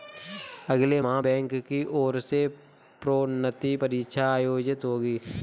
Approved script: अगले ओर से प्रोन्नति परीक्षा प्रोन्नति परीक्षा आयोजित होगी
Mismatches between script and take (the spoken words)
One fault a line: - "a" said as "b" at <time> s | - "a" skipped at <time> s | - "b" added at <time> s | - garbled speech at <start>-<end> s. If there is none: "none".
- "माह बैंक की" added at 1.0 s
- "प्रोन्नति परीक्षा" skipped at 4.3 s